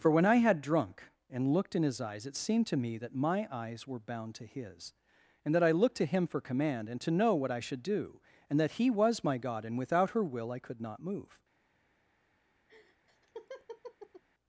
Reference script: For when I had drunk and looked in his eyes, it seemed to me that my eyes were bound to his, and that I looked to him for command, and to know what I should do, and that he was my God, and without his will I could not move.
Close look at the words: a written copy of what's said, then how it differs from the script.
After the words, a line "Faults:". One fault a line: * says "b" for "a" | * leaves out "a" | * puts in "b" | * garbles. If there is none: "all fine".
For when I had drunk and looked in his eyes, it seemed to me that my eyes were bound to his, and that I looked to him for command, and to know what I should do, and that he was my God, and without her will I could not move.
Faults:
* says "her" for "his"